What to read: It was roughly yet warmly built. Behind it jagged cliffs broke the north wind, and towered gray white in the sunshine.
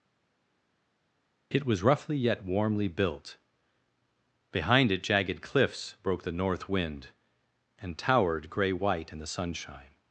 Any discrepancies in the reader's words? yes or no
no